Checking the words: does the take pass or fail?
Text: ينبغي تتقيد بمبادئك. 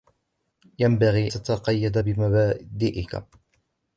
pass